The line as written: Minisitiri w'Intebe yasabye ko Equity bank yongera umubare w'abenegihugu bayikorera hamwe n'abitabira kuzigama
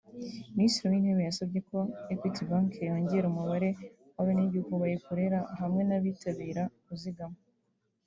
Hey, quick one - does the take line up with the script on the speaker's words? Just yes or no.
yes